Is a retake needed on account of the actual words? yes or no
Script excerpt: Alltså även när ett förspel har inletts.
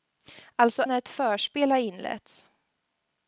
yes